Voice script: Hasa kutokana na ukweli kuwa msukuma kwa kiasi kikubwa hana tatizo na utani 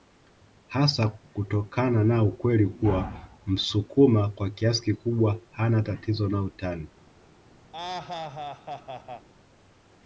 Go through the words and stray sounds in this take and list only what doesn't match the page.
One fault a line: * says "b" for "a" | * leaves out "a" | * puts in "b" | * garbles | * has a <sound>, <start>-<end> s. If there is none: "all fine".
* has a laugh, 7.7-9.3 s